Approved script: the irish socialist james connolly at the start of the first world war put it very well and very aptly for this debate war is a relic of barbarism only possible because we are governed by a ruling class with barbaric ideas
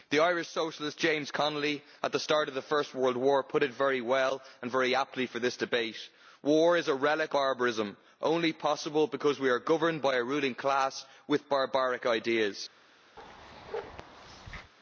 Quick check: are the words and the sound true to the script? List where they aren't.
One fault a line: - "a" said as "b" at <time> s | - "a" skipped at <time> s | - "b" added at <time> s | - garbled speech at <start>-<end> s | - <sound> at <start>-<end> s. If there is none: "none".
- "of" skipped at 7.3 s
- bark at 13.2-14.7 s